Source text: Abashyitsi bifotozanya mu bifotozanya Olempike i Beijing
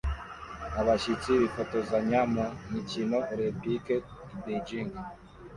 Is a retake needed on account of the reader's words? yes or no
yes